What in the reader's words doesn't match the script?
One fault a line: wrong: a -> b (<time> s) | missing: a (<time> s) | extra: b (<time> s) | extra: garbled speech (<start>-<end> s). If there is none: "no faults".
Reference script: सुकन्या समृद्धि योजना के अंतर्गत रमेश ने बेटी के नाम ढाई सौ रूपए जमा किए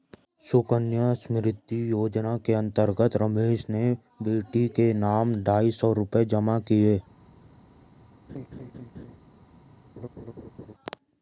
no faults